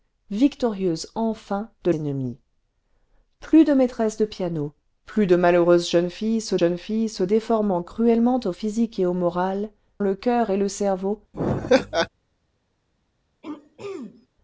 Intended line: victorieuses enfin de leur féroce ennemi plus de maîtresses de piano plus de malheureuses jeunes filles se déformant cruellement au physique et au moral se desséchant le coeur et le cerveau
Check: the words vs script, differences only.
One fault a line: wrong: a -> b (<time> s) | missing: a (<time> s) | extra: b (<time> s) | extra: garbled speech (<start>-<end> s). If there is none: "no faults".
missing: leur féroce (1.9 s)
extra: jeunes filles se (6.6 s)
missing: se desséchant (9.7 s)